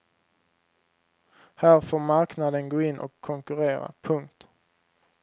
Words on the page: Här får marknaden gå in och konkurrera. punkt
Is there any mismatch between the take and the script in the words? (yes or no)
no